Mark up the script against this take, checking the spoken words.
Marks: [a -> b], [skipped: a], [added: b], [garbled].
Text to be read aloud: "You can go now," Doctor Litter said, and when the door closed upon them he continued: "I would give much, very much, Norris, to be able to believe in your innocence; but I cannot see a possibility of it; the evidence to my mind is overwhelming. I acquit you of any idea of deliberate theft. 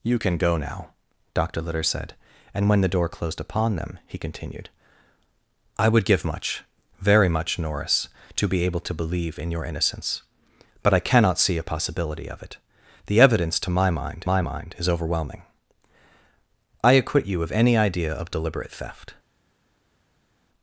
"You can go now," Doctor Litter said, and when the door closed upon them he continued: "I would give much, very much, Norris, to be able to believe in your innocence; but I cannot see a possibility of it; the evidence to my mind [added: my mind] is overwhelming. I acquit you of any idea of deliberate theft.